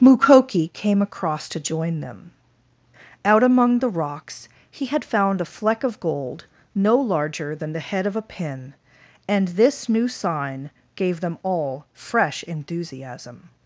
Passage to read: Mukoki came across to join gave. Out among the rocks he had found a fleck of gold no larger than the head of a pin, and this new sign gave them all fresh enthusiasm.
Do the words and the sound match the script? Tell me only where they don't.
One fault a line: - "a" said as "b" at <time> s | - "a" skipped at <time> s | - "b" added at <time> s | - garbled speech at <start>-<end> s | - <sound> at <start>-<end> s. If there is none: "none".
- "gave" said as "them" at 2.0 s